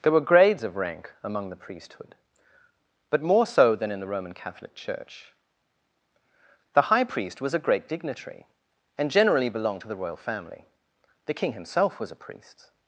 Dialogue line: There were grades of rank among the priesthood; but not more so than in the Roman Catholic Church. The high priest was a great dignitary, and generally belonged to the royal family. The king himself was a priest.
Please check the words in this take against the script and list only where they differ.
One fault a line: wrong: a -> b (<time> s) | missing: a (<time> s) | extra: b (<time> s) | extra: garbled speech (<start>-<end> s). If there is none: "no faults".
missing: not (3.2 s)